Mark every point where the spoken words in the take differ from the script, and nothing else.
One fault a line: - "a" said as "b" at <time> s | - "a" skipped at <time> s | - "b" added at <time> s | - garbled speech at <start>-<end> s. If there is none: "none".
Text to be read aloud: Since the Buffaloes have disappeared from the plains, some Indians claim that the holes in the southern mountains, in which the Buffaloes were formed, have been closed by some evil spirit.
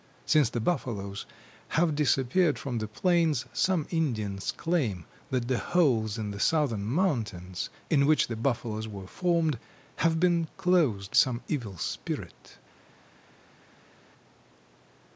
- "by" skipped at 11.2 s